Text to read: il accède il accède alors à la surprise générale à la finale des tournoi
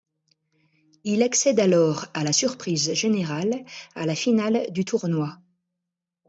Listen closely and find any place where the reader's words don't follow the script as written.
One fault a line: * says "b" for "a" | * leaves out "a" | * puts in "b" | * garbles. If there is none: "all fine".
* leaves out "il accède"
* says "du" for "des"